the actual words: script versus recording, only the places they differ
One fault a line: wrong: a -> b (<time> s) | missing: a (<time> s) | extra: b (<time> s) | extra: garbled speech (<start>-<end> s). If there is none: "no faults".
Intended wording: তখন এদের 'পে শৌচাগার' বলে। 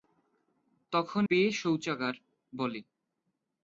missing: এদের (1.2 s)